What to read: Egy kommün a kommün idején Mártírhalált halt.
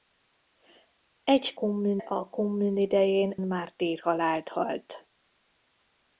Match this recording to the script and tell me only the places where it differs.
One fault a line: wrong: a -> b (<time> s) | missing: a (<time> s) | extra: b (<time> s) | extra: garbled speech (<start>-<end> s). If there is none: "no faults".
no faults